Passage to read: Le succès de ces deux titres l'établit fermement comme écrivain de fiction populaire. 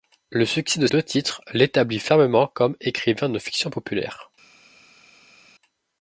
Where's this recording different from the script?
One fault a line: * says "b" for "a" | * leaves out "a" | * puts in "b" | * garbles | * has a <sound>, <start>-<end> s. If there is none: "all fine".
* leaves out "ces"